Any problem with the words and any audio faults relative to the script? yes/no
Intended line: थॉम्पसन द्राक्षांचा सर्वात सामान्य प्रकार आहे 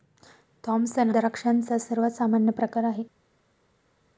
no